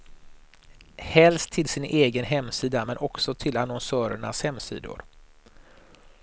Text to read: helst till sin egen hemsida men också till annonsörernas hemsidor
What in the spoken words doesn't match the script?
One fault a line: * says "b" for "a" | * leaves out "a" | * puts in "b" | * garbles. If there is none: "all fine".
all fine